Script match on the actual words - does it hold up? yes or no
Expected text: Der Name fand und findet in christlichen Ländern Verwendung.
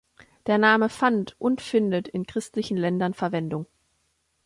yes